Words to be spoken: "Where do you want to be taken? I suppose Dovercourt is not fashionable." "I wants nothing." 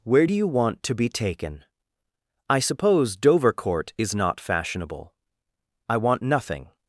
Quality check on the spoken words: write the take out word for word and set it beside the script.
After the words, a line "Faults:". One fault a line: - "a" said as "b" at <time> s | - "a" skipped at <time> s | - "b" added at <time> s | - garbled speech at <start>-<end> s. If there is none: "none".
"Where do you want to be taken? I suppose Dovercourt is not fashionable." "I want nothing."
Faults:
- "wants" said as "want" at 6.0 s